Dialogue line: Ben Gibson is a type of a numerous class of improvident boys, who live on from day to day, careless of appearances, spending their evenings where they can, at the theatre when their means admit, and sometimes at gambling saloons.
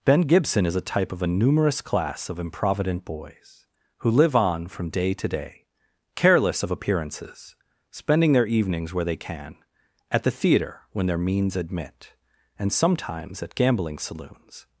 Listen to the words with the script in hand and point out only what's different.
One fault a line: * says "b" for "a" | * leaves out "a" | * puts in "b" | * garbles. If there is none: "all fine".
all fine